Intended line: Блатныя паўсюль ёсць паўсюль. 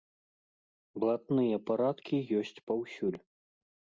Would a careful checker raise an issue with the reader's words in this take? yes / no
yes